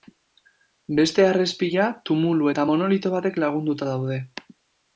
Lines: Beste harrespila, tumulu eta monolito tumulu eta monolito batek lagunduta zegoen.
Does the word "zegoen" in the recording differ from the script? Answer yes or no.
yes